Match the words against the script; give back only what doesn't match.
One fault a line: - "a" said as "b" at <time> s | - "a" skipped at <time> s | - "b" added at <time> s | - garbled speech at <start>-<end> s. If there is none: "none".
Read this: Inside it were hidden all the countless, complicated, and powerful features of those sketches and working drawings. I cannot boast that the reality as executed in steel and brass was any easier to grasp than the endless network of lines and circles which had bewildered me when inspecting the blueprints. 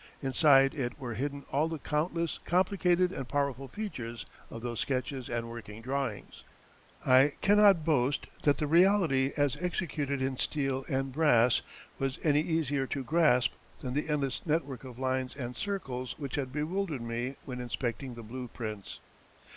none